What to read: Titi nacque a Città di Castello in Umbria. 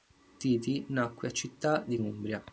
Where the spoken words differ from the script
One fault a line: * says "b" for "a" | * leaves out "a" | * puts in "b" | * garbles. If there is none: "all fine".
* leaves out "Castello in"